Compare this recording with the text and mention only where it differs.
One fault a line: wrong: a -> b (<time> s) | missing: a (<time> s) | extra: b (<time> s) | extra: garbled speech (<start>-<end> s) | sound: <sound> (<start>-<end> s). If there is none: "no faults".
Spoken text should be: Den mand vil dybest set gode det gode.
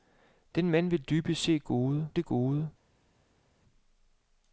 no faults